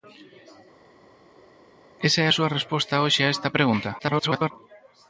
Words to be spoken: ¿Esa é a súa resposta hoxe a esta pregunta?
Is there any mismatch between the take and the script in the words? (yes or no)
yes